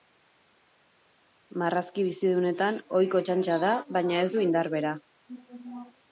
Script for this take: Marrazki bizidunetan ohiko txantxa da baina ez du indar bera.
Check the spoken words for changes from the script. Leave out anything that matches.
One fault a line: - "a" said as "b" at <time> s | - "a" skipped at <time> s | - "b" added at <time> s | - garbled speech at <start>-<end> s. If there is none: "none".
none